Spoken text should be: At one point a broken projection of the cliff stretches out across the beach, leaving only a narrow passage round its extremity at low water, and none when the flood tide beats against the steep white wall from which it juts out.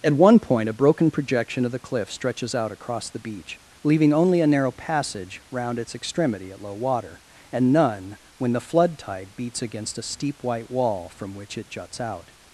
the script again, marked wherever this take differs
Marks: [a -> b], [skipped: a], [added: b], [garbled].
At one point a broken projection of the cliff stretches out across the beach, leaving only a narrow passage round its extremity at low water, and none when the flood tide beats against [the -> a] steep white wall from which it juts out.